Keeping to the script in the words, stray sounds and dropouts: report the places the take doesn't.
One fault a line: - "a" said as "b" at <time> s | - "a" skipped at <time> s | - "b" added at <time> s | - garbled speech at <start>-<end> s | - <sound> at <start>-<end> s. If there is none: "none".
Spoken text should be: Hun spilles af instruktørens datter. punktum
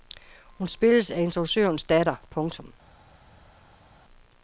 none